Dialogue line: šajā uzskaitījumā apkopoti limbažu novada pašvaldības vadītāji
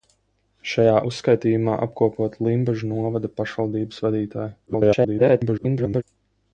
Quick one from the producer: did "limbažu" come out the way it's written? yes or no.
yes